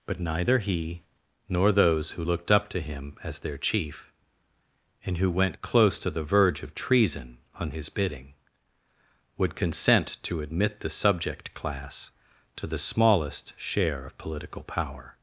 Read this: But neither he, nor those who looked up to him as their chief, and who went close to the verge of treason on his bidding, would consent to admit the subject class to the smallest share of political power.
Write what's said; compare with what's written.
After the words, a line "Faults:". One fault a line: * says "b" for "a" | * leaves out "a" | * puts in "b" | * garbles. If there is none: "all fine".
But neither he, nor those who looked up to him as their chief, and who went close to the verge of treason on his bidding, would consent to admit the subject class to the smallest share of political power.
Faults:
all fine